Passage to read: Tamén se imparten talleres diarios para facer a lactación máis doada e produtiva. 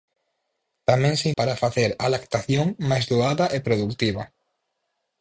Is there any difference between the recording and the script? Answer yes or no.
yes